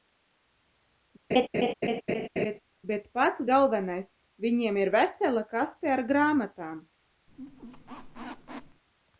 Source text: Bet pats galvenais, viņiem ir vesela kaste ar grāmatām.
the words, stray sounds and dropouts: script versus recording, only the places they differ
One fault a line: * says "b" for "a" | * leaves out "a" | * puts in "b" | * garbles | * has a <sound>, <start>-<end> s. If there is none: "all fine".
* has a laugh, 1.3-2.6 s
* has a squeak, 7.3-8.8 s